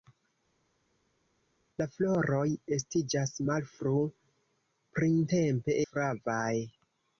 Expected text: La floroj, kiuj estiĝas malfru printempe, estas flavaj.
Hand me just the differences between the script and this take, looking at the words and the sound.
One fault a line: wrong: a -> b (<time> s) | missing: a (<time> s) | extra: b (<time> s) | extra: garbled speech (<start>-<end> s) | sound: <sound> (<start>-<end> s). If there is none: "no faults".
missing: kiuj (2.4 s)
missing: estas (5.8 s)